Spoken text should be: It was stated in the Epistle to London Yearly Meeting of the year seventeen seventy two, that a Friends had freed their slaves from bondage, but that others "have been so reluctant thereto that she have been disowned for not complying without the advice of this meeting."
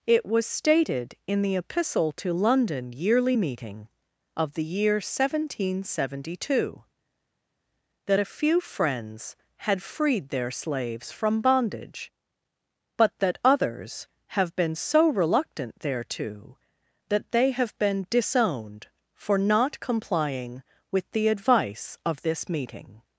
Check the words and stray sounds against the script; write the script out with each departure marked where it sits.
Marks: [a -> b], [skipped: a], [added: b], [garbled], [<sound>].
It was stated in the Epistle to London Yearly Meeting of the year seventeen seventy two, that a [added: few] Friends had freed their slaves from bondage, but that others "have been so reluctant thereto that [she -> they] have been disowned for not complying [without -> with] the advice of this meeting."